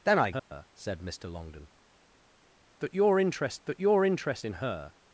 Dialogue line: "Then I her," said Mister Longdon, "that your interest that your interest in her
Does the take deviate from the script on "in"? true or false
false